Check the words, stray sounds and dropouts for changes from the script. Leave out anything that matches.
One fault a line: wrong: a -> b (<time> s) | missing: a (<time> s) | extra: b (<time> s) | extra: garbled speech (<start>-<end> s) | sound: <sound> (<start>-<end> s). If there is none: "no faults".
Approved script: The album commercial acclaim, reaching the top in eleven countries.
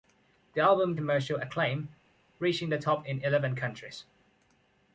no faults